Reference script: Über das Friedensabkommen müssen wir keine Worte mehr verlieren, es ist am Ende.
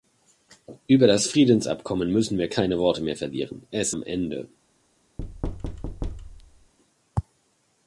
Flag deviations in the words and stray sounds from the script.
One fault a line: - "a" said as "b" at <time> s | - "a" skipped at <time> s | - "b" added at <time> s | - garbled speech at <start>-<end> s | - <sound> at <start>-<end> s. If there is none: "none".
- "ist" skipped at 3.9 s
- thud at 5.2-6.7 s